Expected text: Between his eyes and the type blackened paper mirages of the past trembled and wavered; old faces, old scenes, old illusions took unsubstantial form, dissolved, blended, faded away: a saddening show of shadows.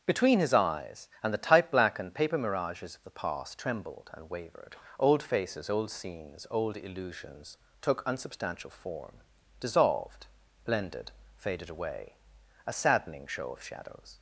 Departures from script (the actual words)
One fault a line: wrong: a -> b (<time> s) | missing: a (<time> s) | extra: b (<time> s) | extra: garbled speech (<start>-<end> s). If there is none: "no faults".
no faults